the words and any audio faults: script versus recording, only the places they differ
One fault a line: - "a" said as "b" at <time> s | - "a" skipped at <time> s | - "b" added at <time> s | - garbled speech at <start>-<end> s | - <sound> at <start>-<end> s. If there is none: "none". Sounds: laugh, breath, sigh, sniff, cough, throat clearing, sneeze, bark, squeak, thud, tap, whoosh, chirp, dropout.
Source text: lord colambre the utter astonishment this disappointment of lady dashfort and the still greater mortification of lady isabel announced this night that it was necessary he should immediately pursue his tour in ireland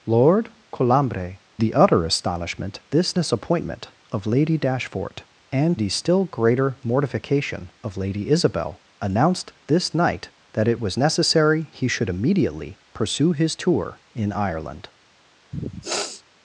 - sniff at 15.5-16.2 s